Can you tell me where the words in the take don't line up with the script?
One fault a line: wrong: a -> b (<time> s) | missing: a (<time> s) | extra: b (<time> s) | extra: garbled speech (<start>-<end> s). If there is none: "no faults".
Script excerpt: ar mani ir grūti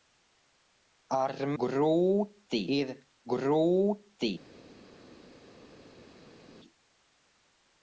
wrong: mani -> grūti (1.6 s)